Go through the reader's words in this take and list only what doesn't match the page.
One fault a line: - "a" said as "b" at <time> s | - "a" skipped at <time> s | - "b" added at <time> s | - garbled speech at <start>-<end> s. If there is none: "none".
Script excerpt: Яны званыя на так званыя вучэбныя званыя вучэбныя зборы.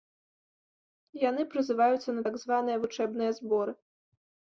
- "званыя" said as "прызываюцца" at 1.5 s
- "званыя вучэбныя" skipped at 3.3 s